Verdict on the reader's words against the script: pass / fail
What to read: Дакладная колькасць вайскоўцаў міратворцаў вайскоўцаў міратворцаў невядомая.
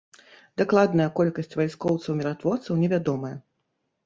fail